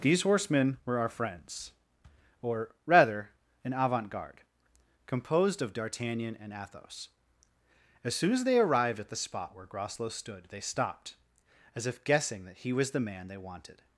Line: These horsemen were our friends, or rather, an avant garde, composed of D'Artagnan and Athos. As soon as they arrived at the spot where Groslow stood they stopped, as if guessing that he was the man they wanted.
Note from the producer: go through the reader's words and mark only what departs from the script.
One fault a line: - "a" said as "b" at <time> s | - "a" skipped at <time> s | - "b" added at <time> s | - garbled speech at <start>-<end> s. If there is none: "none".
none